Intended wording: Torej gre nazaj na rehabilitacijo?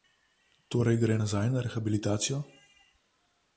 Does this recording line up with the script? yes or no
yes